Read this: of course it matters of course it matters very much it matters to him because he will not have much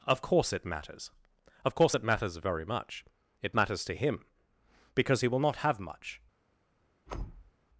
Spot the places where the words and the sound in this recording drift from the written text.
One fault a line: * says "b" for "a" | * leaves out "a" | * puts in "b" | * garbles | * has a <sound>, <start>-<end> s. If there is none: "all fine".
* has a thud, 7.1-7.5 s